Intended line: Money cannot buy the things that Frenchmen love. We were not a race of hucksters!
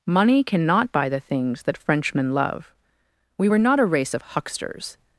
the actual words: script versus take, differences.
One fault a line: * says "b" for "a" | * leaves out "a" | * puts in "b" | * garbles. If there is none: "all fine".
all fine